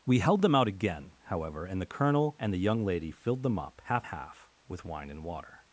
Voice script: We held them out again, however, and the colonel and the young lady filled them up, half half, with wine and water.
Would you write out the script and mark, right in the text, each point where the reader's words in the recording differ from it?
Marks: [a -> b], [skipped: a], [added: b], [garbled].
We held them out again, however, and the colonel and the young lady filled them up, half half, with wine and water.